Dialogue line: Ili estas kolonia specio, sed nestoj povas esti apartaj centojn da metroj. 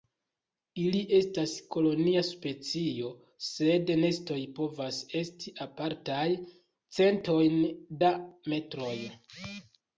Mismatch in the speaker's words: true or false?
false